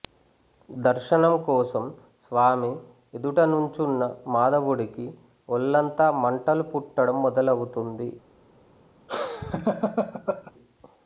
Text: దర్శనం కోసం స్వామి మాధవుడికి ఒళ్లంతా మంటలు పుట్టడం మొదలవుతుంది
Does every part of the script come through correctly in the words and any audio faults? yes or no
no